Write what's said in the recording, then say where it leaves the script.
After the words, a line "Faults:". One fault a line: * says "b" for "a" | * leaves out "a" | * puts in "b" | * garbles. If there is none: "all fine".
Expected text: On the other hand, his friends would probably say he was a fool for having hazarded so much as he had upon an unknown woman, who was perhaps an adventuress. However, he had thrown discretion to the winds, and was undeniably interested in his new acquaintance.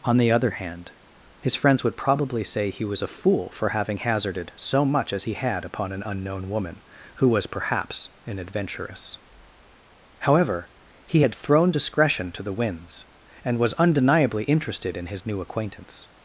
On the other hand, his friends would probably say he was a fool for having hazarded so much as he had upon an unknown woman, who was perhaps an adventuress. However, he had thrown discretion to the winds, and was undeniably interested in his new acquaintance.
Faults:
all fine